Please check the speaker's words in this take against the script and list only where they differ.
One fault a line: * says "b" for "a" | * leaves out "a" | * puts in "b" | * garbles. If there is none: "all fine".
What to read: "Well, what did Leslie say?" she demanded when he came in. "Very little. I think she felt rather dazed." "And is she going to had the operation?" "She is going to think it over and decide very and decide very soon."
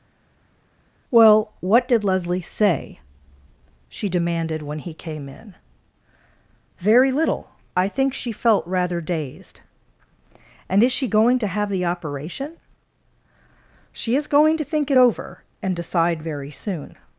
* says "have" for "had"
* leaves out "and decide very"